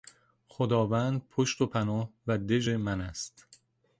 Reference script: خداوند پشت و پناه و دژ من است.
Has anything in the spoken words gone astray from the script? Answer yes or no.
no